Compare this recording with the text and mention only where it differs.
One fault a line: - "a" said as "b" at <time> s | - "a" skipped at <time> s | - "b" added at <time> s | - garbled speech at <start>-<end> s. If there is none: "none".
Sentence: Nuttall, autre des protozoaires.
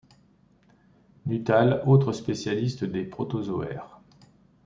- "spécialiste" added at 2.1 s